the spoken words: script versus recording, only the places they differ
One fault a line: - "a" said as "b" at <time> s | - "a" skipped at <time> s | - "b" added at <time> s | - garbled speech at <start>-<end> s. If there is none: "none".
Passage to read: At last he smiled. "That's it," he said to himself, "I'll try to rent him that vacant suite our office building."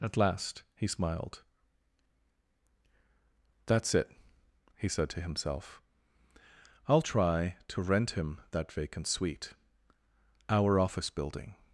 none